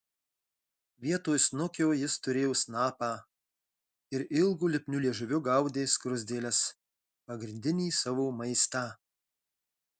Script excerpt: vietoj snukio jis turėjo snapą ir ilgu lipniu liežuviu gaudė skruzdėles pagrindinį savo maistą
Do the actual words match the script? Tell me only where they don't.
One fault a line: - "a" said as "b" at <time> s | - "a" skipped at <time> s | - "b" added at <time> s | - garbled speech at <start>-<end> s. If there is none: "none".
none